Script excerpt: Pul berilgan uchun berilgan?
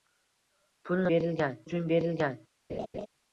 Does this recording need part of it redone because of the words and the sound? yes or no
yes